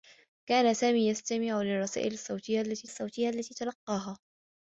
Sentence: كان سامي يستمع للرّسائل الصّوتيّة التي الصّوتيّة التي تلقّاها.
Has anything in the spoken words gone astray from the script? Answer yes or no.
no